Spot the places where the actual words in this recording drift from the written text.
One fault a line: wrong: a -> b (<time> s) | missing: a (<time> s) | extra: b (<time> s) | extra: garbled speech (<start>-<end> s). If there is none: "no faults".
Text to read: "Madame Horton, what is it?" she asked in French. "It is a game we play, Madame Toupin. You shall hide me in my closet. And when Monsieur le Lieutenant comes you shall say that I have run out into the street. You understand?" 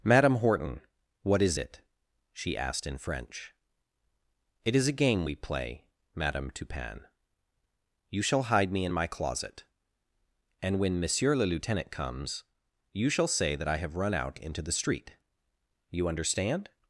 no faults